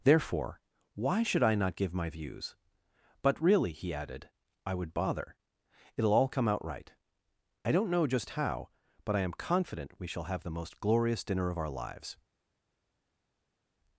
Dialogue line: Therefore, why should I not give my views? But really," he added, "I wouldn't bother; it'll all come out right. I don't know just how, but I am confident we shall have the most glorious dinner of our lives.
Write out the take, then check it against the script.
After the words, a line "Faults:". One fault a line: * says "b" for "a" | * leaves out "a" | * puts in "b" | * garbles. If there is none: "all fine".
Therefore, why should I not give my views? But really," he added, "I would bother; it'll all come out right. I don't know just how, but I am confident we shall have the most glorious dinner of our lives.
Faults:
* says "would" for "wouldn't"